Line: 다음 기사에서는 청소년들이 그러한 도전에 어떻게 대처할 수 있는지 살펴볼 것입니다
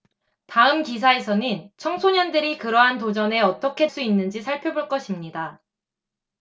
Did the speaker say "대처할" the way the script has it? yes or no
no